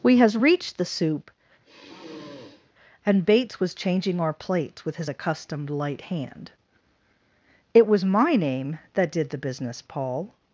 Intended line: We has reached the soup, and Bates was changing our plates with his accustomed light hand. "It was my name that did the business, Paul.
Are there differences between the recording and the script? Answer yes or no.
no